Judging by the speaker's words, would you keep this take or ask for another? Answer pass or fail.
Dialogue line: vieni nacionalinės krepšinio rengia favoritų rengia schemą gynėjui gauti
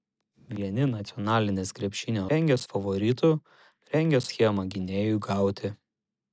pass